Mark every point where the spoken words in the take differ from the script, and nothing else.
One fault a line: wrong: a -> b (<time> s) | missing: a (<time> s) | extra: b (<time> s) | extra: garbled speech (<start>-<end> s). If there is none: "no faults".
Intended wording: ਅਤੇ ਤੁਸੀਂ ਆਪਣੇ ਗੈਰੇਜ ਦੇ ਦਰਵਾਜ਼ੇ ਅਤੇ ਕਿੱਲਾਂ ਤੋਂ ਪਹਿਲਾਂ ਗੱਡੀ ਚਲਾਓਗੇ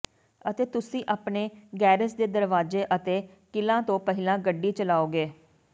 no faults